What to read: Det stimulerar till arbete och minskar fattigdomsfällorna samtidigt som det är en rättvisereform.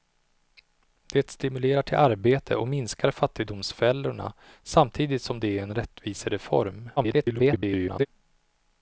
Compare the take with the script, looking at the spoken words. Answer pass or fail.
fail